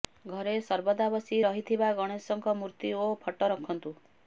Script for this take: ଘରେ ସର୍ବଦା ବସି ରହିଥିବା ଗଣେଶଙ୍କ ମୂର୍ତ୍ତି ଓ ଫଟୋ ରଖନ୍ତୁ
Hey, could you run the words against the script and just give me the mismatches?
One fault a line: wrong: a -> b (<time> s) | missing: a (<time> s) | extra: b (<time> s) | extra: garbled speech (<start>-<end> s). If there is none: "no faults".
no faults